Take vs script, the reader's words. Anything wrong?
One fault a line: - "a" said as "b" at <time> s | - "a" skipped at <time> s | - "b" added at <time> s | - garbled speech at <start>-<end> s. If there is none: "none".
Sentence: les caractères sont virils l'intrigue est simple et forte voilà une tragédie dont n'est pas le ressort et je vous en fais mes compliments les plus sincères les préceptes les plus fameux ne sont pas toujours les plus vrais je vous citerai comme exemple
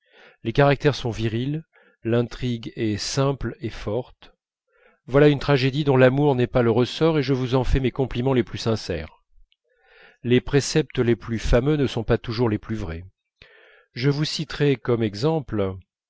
- "l'amour" added at 6.0 s